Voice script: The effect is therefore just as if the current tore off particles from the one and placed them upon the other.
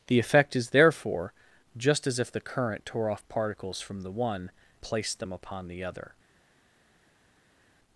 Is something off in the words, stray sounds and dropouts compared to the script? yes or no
yes